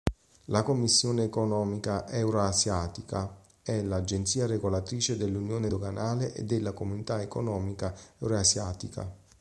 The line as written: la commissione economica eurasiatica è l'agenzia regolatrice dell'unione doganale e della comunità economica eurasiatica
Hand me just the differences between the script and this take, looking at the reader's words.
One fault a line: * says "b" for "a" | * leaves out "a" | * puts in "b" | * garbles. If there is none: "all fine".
all fine